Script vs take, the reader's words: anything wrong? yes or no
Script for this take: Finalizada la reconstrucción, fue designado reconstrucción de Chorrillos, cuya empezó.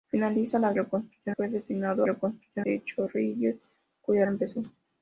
no